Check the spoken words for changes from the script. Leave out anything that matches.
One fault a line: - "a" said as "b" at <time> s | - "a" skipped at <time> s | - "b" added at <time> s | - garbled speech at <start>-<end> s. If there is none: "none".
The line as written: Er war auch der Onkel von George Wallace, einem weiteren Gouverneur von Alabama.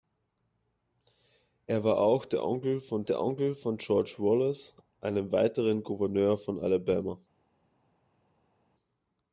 - "der Onkel von" added at 3.0 s